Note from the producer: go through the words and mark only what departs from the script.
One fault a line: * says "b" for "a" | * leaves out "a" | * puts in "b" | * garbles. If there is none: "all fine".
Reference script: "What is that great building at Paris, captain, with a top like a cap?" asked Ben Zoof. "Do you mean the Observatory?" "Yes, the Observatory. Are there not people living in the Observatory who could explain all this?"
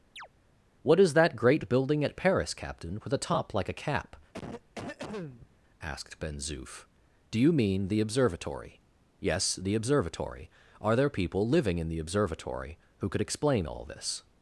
* leaves out "not"